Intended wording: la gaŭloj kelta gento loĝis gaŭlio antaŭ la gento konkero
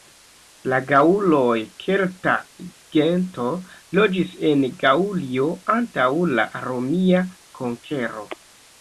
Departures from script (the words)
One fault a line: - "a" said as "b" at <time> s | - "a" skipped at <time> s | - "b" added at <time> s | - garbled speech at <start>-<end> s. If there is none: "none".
- "en" added at 4.5 s
- "gento" said as "romia" at 6.7 s